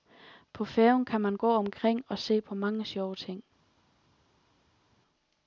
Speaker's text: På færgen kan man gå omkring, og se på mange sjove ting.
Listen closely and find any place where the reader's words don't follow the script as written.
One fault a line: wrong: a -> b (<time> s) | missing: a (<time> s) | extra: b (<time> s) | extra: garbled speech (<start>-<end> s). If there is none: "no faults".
no faults